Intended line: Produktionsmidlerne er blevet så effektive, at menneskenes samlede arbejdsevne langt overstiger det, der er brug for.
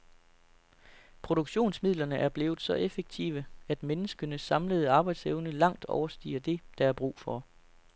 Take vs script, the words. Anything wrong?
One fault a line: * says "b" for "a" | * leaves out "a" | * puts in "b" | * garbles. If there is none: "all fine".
all fine